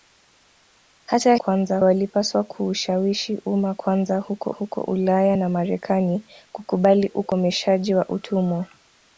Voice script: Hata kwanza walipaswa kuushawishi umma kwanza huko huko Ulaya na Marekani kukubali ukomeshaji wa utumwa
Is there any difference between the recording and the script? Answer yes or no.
no